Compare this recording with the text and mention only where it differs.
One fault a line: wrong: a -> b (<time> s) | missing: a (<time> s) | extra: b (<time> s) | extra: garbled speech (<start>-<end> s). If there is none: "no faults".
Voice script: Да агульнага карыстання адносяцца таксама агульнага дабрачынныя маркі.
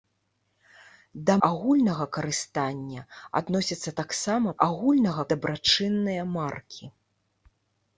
no faults